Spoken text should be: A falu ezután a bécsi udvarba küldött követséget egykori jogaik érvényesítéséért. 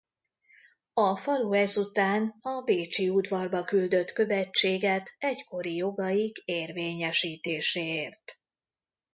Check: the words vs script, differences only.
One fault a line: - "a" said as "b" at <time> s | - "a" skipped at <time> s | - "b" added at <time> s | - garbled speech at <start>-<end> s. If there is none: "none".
none